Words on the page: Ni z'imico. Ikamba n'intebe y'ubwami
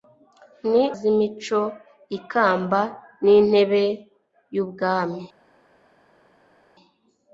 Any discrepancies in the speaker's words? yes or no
no